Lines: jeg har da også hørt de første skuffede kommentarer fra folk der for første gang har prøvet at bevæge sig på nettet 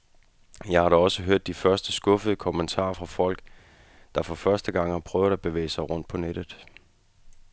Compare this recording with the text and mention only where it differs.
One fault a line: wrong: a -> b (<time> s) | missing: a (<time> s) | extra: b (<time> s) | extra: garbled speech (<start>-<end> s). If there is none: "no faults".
extra: rundt (5.9 s)